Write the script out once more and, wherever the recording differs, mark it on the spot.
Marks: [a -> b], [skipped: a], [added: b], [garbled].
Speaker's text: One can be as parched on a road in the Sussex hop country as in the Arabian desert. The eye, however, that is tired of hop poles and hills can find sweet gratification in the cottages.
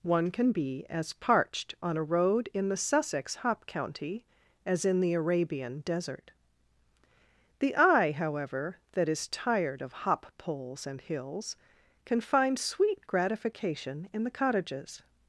One can be as parched on a road in the Sussex hop [country -> county] as in the Arabian desert. The eye, however, that is tired of hop poles and hills can find sweet gratification in the cottages.